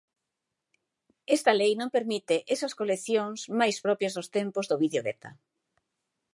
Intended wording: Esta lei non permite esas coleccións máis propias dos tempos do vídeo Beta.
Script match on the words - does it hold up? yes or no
yes